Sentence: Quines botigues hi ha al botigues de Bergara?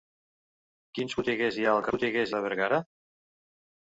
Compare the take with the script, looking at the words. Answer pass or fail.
pass